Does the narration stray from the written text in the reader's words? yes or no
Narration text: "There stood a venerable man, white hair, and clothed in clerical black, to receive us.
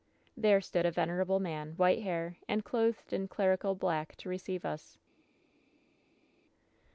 no